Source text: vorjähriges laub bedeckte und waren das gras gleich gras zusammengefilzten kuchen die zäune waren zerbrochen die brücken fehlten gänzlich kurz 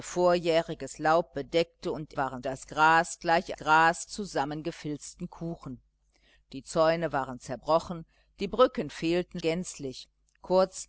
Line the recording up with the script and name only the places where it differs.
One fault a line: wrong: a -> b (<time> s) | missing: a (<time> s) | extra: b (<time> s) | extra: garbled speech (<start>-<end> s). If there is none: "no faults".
no faults